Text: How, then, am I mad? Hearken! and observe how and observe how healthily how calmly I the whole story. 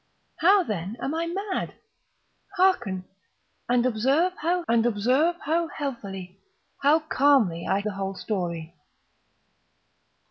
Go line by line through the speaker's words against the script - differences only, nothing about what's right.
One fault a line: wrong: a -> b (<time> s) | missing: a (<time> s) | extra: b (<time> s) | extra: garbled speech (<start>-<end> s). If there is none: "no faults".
no faults